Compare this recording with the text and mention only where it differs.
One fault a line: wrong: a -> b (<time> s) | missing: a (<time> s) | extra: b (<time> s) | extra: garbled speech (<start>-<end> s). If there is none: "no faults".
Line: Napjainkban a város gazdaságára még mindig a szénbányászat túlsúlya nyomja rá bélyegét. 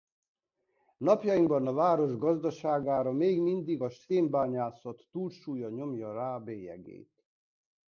no faults